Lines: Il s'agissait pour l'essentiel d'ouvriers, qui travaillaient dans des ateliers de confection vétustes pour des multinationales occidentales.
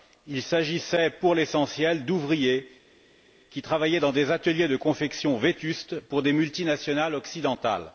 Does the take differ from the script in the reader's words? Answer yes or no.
no